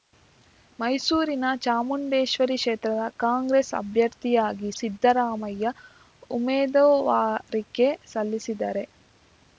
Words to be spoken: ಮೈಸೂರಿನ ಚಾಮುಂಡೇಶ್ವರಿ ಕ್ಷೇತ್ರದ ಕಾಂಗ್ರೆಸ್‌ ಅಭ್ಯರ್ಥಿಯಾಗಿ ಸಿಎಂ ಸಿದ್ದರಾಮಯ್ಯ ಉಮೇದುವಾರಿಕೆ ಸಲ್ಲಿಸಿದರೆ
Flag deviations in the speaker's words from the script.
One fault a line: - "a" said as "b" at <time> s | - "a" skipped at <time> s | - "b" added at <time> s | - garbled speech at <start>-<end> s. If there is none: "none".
- "ಸಿಎಂ" skipped at 4.7 s